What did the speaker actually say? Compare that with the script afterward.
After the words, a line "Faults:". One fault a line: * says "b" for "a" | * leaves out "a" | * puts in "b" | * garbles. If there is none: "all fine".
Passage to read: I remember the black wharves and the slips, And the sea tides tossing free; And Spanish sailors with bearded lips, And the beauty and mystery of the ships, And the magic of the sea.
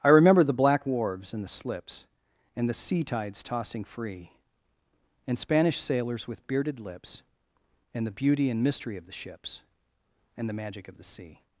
I remember the black wharves and the slips, And the sea tides tossing free; And Spanish sailors with bearded lips, And the beauty and mystery of the ships, And the magic of the sea.
Faults:
all fine